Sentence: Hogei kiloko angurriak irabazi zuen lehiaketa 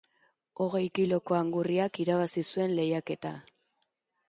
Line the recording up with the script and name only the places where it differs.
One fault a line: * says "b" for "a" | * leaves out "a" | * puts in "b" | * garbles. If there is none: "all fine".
all fine